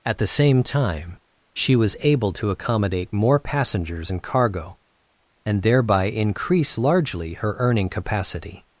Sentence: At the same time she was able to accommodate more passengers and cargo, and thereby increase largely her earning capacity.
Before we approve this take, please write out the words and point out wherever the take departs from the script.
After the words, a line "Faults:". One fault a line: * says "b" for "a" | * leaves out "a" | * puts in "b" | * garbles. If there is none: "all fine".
At the same time she was able to accommodate more passengers and cargo, and thereby increase largely her earning capacity.
Faults:
all fine